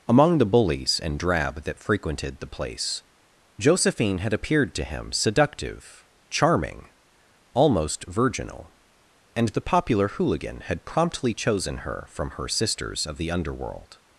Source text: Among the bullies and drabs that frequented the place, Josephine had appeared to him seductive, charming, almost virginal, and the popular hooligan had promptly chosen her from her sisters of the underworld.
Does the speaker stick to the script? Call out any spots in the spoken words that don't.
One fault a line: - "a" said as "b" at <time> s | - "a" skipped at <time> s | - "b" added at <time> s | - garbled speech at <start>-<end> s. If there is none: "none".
- "drabs" said as "drab" at 1.2 s